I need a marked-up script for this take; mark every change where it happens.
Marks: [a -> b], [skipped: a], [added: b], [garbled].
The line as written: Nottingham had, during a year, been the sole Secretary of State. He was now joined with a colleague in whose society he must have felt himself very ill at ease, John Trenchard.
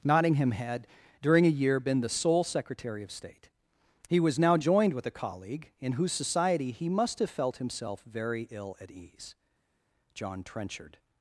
Nottingham had, during a year, been the sole Secretary of State. He was now joined with a colleague in whose society he must have felt himself very ill at ease, John Trenchard.